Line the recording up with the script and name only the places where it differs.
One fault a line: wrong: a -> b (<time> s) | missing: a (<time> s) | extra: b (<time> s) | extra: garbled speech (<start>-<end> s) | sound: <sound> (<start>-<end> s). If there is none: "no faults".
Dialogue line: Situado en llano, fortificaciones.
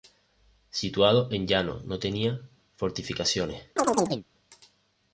extra: no tenía (1.8 s)
sound: chirp (3.8-4.3 s)